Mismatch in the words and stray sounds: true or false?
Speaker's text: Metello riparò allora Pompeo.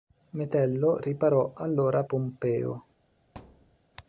true